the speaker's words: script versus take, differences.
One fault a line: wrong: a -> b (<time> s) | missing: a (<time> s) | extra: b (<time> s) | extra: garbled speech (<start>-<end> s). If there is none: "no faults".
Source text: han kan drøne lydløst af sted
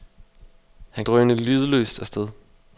missing: kan (1.1 s)